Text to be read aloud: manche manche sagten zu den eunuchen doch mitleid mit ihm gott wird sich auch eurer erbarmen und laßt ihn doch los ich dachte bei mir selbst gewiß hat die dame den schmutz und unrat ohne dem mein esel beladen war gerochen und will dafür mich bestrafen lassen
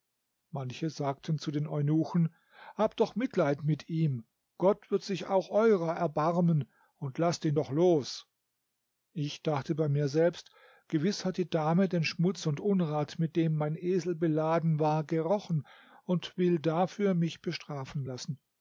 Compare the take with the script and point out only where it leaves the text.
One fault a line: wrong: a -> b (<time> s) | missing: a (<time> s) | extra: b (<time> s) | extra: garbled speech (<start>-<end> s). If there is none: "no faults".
missing: manche (0.9 s)
extra: habt (2.8 s)
wrong: ohne -> mit (13.2 s)